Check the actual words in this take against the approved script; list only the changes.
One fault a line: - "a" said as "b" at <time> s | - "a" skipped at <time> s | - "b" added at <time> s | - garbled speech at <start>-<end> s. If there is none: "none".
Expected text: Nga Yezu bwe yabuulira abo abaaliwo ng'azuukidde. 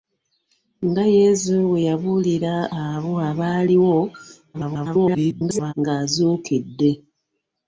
- garbled speech at 4.5-5.7 s